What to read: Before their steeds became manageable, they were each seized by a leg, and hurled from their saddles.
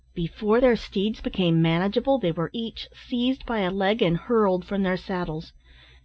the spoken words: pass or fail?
pass